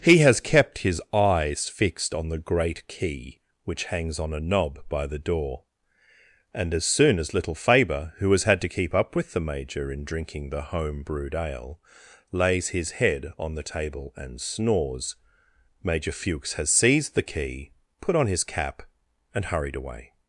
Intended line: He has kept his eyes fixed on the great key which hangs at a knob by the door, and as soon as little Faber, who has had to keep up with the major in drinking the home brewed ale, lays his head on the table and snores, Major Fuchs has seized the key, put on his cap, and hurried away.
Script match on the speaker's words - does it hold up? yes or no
no